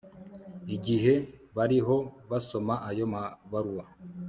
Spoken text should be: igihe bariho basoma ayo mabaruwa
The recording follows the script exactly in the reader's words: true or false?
true